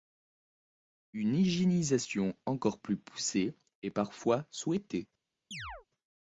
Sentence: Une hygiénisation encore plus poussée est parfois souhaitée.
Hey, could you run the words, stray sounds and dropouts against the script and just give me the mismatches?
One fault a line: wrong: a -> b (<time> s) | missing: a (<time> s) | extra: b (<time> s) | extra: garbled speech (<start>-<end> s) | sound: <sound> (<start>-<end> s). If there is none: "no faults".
sound: chirp (5.5-5.9 s)